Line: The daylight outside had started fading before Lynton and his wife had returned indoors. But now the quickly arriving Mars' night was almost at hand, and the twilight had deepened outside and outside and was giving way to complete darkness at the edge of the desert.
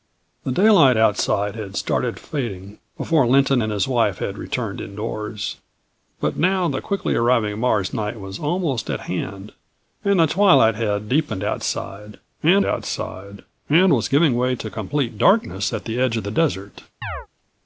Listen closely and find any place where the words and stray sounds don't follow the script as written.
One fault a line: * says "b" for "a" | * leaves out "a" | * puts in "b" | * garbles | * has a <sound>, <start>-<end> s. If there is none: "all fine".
* has a chirp, 17.0-17.3 s